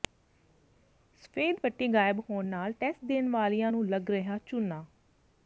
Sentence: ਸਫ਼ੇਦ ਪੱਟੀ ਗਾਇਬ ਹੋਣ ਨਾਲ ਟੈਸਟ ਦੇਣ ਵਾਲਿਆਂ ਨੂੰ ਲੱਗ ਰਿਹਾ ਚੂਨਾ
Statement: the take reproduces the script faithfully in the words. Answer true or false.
true